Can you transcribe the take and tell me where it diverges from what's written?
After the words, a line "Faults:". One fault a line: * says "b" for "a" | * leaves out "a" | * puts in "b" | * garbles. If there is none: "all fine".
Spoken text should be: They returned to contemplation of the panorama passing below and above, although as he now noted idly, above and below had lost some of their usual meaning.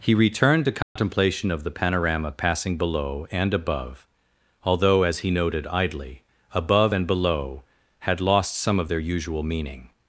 He returned to contemplation of the panorama passing below and above, although as he noted idly, above and below had lost some of their usual meaning.
Faults:
* says "He" for "They"
* leaves out "now"